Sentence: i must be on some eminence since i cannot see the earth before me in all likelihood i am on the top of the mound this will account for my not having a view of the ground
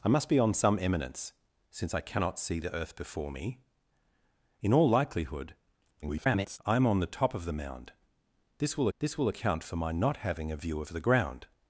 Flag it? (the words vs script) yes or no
yes